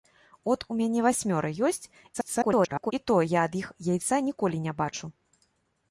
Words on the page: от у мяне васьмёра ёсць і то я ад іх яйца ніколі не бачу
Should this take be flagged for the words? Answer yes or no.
yes